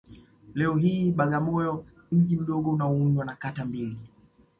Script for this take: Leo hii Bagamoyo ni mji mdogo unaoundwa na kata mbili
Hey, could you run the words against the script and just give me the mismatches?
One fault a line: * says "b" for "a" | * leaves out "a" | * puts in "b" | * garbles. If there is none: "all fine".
* leaves out "ni"